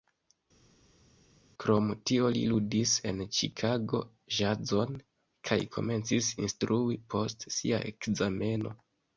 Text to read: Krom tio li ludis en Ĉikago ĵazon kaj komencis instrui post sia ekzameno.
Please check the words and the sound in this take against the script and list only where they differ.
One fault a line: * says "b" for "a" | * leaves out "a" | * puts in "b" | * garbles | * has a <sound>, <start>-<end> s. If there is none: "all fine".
all fine